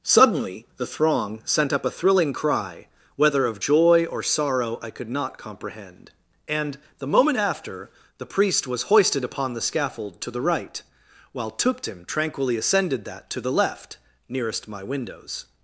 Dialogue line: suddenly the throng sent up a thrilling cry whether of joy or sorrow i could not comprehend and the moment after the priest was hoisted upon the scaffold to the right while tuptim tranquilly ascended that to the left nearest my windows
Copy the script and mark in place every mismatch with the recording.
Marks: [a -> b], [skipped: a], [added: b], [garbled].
suddenly the throng sent up a thrilling cry whether of joy or sorrow i could not comprehend and the moment after the priest was hoisted upon the scaffold to the right while tuptim tranquilly ascended that to the left nearest my windows